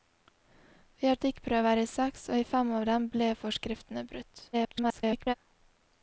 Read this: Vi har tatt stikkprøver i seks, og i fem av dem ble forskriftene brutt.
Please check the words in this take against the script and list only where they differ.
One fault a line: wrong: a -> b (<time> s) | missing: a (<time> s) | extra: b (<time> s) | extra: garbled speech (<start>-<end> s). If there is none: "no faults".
missing: tatt (1.2 s)
extra: garbled speech (4.5-5.3 s)